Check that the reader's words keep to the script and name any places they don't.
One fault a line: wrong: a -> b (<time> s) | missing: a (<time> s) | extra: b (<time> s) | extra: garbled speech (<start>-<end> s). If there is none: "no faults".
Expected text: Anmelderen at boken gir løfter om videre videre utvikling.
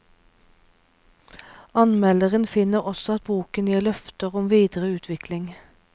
extra: finner også (2.5 s)
missing: videre (4.9 s)